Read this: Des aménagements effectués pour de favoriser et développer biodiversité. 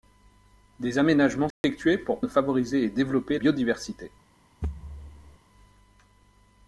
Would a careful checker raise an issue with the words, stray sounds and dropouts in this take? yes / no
yes